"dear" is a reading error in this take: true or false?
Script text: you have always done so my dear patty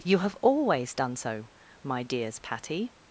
true